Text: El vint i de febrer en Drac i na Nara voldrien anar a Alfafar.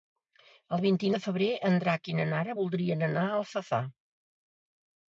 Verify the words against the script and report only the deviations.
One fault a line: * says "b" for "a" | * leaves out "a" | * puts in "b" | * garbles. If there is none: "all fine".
all fine